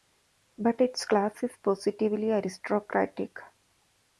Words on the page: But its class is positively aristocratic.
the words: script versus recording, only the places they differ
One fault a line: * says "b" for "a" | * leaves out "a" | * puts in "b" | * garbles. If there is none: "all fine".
all fine